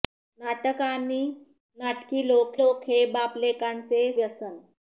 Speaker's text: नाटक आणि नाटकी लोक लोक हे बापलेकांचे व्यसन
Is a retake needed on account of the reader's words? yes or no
no